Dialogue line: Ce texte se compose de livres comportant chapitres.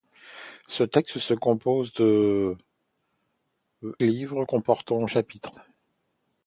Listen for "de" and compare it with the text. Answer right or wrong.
right